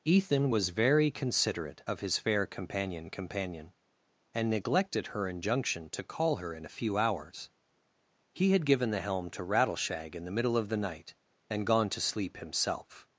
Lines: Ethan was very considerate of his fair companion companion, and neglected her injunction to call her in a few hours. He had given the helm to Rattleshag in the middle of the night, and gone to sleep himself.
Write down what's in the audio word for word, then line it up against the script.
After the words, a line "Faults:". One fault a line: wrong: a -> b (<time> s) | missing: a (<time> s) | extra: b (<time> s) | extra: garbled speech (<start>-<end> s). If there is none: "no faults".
Ethan was very considerate of his fair companion companion, and neglected her injunction to call her in a few hours. He had given the helm to Rattleshag in the middle of the night, and gone to sleep himself.
Faults:
no faults